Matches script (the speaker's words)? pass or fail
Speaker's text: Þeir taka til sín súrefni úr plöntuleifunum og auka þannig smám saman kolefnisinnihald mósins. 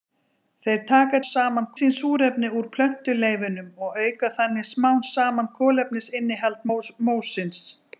fail